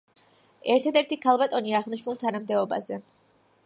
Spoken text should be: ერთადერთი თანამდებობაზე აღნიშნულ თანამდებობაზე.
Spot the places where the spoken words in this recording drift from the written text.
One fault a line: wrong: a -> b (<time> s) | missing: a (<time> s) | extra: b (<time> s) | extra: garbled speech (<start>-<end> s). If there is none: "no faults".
wrong: თანამდებობაზე -> ქალბატონი (1.3 s)